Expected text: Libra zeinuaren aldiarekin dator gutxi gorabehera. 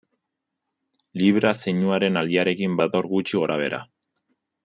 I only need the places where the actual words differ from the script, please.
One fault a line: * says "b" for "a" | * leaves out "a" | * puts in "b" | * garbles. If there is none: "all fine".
all fine